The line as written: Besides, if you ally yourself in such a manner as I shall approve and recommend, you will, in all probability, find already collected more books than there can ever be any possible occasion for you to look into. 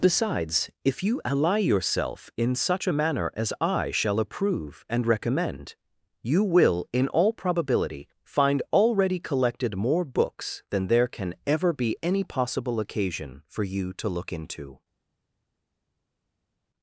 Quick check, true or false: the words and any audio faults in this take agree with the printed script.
true